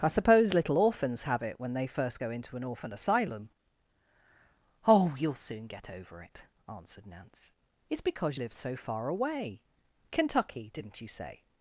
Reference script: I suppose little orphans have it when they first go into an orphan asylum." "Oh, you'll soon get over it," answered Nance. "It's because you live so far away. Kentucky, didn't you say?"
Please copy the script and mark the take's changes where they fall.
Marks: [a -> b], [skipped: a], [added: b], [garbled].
I suppose little orphans have it when they first go into an orphan asylum." "Oh, you'll soon get over it," answered Nance. "It's because [skipped: you] live so far away. Kentucky, didn't you say?"